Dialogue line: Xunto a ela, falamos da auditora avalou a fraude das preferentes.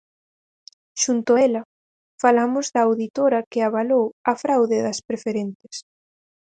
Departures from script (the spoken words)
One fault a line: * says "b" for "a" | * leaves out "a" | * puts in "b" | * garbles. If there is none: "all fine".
* puts in "que"